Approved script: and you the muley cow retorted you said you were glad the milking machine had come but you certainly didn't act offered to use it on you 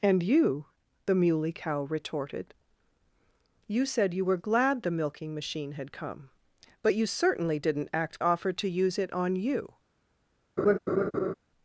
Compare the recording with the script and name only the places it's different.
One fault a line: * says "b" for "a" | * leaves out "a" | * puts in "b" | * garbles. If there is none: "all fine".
all fine